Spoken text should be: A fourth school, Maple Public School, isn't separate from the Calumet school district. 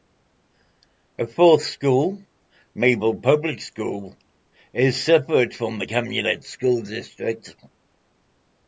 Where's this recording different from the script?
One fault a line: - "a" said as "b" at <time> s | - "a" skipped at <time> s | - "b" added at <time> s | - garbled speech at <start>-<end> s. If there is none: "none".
- "isn't" said as "is" at 4.7 s